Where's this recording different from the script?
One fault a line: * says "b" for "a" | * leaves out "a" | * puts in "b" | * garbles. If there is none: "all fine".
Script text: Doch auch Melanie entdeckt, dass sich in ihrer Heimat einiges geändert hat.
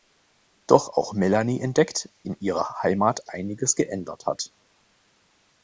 * leaves out "dass sich"